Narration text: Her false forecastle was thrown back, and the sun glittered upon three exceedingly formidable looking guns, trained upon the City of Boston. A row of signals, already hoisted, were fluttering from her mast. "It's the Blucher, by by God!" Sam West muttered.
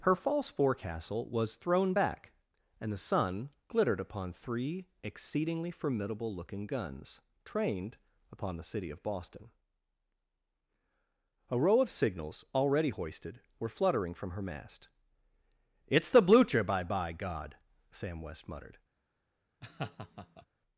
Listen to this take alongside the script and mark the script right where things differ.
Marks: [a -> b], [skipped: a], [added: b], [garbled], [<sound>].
Her false forecastle was thrown back, and the sun glittered upon three exceedingly formidable looking guns, trained upon the City of Boston. A row of signals, already hoisted, were fluttering from her mast. "It's the Blucher, by by God!" Sam West muttered. [laugh]